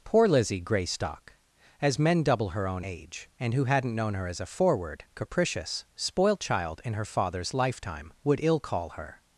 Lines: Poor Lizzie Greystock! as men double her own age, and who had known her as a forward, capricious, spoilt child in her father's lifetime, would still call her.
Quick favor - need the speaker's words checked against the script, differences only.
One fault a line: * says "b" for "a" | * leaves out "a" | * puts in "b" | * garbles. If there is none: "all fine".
* says "hadn't" for "had"
* says "ill" for "still"